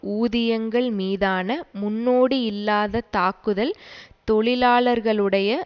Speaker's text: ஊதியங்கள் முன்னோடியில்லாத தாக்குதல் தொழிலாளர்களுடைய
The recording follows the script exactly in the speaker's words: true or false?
false